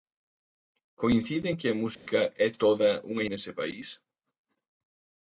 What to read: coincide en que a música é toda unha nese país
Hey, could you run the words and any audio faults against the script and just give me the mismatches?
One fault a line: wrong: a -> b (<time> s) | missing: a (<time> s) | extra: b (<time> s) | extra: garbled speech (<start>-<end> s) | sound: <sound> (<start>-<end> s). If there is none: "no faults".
sound: dropout (1.9-2.1 s)